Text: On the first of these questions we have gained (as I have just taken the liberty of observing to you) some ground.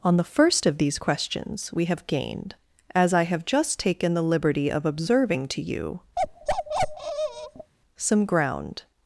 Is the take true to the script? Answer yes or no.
yes